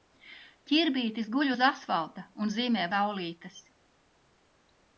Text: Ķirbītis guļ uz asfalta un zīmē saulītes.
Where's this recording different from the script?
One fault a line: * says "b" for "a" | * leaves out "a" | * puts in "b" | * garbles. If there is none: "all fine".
all fine